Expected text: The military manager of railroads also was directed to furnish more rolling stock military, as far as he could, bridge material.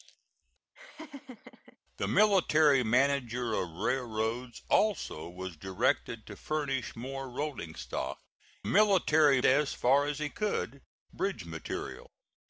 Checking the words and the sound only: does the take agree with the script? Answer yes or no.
no